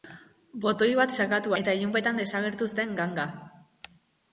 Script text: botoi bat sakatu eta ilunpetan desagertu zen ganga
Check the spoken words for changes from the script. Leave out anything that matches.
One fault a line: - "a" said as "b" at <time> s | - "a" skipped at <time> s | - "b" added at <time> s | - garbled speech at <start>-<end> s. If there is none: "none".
none